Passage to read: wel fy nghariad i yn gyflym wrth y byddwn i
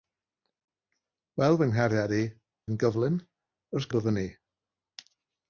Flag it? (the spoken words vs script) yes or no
no